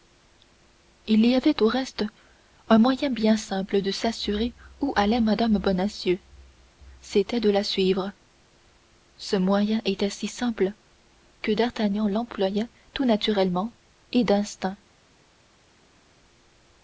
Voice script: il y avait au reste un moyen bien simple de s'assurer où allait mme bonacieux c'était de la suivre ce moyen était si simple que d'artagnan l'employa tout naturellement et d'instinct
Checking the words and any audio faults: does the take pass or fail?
pass